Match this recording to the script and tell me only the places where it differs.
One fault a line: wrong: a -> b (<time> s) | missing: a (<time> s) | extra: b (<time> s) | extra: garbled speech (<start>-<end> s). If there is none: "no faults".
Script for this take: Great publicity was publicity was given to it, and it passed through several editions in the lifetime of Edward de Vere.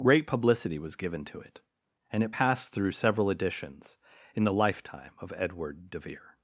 missing: publicity was (0.9 s)